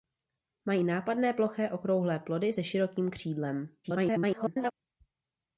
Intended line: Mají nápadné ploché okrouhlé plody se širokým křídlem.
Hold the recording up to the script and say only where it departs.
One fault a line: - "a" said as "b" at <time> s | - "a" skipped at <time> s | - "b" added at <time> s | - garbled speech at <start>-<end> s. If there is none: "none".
- garbled speech at 3.8-4.7 s